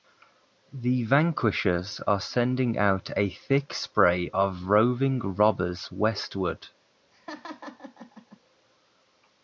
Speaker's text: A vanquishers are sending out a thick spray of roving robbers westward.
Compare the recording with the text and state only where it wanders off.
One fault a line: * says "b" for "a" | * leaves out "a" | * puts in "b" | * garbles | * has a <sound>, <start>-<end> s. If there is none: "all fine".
* says "The" for "A"
* has a laugh, 7.1-8.4 s